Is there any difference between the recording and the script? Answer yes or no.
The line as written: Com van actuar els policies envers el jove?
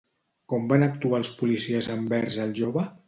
no